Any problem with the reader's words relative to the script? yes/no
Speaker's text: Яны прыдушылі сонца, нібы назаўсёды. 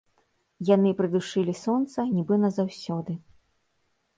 no